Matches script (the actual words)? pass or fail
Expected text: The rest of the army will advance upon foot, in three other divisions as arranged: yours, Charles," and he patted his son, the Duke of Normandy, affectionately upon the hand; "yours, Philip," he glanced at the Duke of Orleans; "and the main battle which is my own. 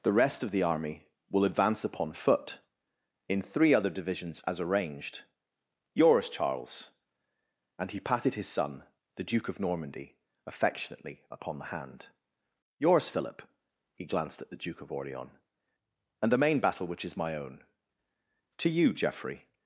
fail